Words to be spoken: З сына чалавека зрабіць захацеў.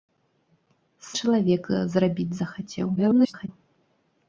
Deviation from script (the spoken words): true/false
true